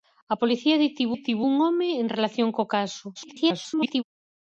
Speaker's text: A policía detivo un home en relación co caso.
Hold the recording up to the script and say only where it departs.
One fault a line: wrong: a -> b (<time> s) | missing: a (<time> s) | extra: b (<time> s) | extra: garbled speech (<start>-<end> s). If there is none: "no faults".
extra: detivo (1.1 s)
extra: garbled speech (3.1-4.0 s)